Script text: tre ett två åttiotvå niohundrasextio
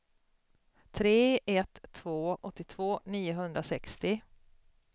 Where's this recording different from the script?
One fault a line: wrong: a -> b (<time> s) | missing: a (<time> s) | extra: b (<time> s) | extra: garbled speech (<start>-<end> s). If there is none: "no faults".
no faults